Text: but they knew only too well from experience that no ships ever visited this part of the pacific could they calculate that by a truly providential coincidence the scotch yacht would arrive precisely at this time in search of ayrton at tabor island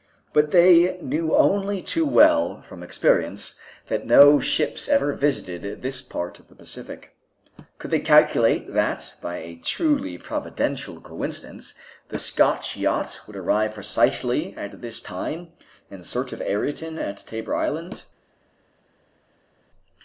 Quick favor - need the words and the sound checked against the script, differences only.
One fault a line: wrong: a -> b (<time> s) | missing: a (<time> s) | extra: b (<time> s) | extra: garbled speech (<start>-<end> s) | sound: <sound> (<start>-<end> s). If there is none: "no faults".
no faults